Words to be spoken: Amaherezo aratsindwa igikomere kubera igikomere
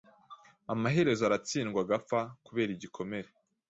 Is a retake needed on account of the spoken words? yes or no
yes